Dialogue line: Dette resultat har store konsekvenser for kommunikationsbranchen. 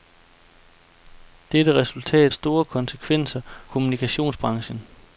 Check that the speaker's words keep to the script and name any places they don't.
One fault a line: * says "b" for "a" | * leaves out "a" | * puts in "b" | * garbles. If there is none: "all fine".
* leaves out "har"
* leaves out "for"